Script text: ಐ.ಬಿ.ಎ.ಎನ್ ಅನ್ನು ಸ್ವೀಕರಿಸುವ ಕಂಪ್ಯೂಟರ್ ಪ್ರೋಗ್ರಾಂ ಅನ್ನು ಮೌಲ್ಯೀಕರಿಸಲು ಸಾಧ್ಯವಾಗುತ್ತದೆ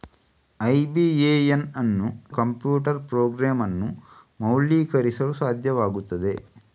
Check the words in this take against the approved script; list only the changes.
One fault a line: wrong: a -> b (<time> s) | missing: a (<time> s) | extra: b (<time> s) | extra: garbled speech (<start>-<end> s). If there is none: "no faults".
missing: ಸ್ವೀಕರಿಸುವ (2.1 s)